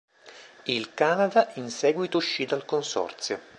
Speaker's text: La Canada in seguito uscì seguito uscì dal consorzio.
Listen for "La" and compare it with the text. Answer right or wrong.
wrong